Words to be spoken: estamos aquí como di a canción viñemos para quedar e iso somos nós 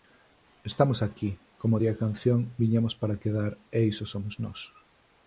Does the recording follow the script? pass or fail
pass